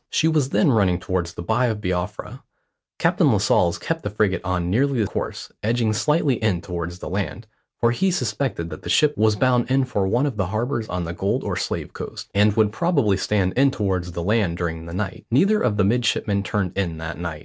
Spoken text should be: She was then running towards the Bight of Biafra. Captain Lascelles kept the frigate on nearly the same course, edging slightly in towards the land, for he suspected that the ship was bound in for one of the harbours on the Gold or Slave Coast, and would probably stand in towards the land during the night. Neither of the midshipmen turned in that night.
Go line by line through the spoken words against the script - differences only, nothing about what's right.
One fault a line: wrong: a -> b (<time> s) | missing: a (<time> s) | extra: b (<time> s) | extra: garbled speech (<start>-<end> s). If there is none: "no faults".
missing: same (5.1 s)